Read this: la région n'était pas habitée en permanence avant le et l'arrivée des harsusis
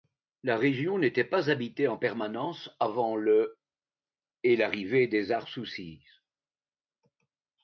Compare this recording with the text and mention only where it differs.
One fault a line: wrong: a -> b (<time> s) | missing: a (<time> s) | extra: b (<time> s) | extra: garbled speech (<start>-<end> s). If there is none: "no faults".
no faults